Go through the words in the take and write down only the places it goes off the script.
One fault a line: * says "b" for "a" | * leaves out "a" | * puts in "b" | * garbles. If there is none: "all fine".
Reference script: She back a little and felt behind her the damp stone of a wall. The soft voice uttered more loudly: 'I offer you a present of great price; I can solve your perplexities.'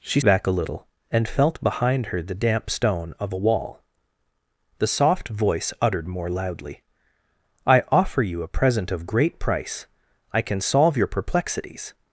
all fine